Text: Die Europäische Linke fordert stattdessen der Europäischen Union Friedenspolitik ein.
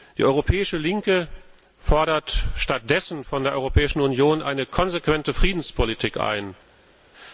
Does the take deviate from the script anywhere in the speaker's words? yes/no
yes